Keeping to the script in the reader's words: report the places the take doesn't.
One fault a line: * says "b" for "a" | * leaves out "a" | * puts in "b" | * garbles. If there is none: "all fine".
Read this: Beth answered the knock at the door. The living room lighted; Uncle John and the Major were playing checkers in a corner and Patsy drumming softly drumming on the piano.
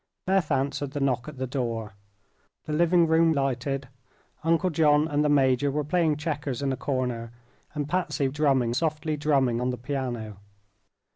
all fine